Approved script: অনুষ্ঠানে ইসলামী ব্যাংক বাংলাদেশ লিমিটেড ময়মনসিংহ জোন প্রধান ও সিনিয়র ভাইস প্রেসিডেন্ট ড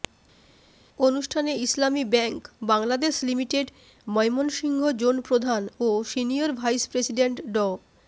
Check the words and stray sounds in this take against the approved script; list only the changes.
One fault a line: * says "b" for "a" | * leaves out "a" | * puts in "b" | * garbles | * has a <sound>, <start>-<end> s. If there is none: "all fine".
all fine